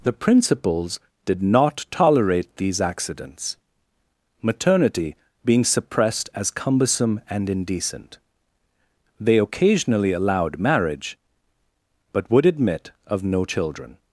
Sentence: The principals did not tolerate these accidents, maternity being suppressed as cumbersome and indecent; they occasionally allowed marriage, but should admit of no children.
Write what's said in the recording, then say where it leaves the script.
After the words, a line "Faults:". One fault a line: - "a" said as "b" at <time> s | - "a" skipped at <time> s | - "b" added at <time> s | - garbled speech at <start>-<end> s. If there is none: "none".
The principals did not tolerate these accidents, maternity being suppressed as cumbersome and indecent; they occasionally allowed marriage, but would admit of no children.
Faults:
- "should" said as "would" at 12.3 s